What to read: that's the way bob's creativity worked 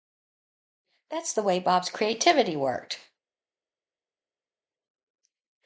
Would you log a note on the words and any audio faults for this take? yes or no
no